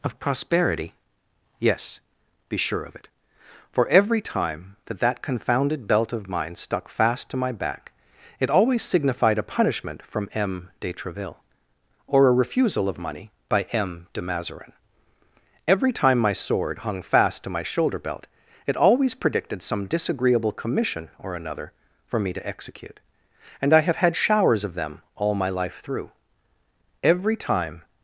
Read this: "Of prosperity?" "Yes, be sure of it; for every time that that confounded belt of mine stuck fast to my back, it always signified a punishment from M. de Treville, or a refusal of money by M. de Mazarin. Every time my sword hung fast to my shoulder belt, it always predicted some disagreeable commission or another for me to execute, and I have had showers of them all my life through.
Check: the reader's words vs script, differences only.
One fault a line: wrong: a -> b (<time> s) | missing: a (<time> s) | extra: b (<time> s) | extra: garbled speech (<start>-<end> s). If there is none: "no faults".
extra: Every time (27.0 s)